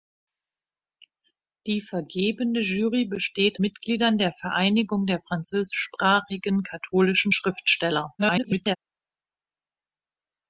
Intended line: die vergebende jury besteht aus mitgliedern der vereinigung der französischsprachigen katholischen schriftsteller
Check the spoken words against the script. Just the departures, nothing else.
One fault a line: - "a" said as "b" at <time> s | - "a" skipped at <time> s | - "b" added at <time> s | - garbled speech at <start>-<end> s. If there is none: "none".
- "aus" skipped at 3.6 s
- garbled speech at 8.2-8.8 s